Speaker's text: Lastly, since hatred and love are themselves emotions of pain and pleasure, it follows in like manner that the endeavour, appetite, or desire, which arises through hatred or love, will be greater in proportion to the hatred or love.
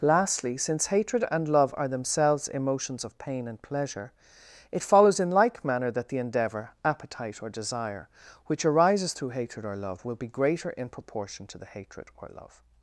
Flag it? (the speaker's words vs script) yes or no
no